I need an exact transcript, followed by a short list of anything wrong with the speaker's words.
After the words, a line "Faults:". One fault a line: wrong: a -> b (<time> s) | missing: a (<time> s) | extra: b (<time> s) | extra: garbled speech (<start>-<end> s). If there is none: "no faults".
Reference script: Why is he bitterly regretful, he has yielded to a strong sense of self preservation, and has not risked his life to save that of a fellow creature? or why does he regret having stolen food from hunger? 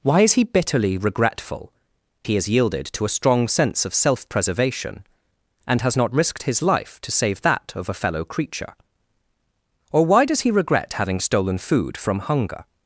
Why is he bitterly regretful, he has yielded to a strong sense of self preservation, and has not risked his life to save that of a fellow creature? or why does he regret having stolen food from hunger?
Faults:
no faults